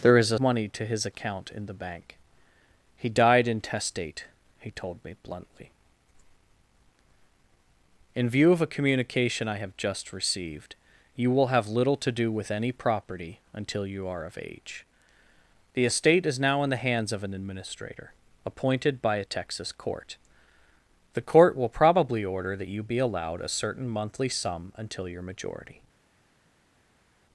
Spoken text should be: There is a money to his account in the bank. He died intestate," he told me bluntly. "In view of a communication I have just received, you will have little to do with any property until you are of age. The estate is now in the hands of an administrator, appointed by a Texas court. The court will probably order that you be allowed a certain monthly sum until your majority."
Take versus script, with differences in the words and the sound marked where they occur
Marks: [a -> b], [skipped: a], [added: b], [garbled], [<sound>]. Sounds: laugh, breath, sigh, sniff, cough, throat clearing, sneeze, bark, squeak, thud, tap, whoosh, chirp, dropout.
There is a money to his account in the bank. He died intestate," he told me bluntly. "In view of a communication I have just received, you will have little to do with any property until you are of age. The estate is now in the hands of an administrator, appointed by a Texas court. The court will probably order that you be allowed a certain monthly sum until your majority."